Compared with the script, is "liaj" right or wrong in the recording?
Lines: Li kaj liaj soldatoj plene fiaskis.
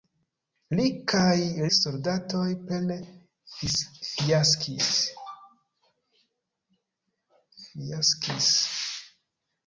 wrong